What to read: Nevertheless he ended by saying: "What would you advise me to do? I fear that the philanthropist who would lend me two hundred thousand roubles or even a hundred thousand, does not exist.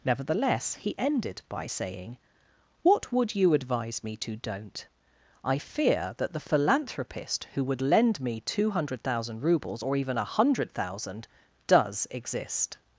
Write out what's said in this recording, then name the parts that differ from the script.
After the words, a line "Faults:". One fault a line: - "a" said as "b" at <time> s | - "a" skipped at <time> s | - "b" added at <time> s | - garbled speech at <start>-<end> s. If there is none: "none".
Nevertheless he ended by saying: "What would you advise me to don't? I fear that the philanthropist who would lend me two hundred thousand roubles or even a hundred thousand, does exist.
Faults:
- "do" said as "don't" at 4.4 s
- "not" skipped at 12.1 s